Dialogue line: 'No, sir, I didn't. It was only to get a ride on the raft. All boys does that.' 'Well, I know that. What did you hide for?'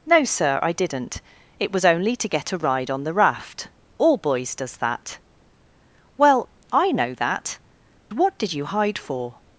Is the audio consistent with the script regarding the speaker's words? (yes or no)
yes